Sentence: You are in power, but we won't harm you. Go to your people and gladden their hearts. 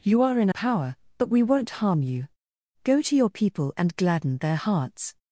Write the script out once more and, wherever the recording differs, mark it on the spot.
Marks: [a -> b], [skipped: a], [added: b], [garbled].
You are in power, but we won't harm you. Go to your people and gladden their hearts.